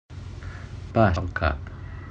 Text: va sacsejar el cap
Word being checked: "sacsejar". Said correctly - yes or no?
no